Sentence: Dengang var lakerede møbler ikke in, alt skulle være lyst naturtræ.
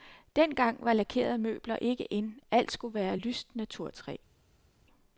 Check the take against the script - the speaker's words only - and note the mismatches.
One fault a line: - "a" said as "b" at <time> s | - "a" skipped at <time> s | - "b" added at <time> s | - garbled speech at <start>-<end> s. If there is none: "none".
none